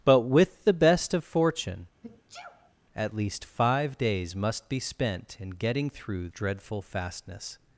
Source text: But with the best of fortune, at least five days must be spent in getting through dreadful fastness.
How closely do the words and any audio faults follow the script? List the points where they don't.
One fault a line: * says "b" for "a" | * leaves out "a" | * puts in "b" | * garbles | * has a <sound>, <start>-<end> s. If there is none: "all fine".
* has a sneeze, 2.0-2.7 s